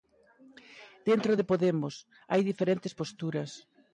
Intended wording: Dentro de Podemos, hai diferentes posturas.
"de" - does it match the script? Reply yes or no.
yes